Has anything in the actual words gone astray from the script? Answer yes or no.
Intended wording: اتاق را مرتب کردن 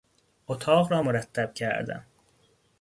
no